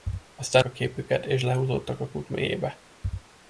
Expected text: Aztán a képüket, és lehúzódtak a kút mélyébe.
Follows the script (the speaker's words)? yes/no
yes